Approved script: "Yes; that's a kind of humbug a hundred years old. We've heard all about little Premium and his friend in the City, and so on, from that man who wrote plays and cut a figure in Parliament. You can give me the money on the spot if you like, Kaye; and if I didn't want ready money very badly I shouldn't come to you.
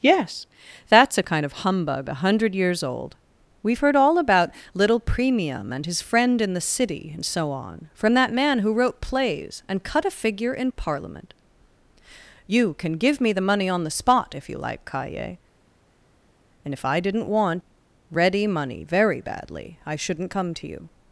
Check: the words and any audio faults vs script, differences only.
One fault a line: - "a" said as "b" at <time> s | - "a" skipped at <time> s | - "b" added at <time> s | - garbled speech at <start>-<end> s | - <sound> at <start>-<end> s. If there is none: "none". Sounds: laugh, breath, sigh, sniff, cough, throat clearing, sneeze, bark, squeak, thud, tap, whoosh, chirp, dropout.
none